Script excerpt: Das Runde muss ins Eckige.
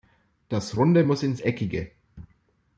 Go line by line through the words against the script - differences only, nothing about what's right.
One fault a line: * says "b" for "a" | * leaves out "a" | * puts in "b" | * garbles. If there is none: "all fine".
all fine